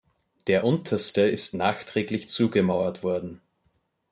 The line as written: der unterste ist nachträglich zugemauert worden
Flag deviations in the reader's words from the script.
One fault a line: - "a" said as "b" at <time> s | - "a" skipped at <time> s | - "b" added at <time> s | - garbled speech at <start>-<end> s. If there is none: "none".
none